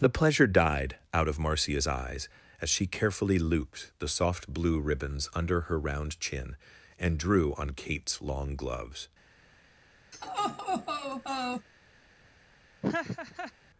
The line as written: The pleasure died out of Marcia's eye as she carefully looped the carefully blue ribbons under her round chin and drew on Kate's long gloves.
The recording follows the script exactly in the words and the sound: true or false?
false